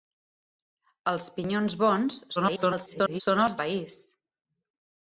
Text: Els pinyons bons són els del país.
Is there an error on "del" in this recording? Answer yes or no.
yes